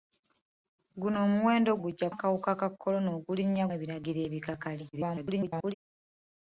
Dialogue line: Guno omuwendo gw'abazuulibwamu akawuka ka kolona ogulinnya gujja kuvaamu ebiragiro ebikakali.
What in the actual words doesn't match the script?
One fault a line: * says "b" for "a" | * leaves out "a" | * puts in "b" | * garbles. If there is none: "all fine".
* says "gujja" for "gw'abazuulibwamu"
* leaves out "gujja kuvaamu"
* garbles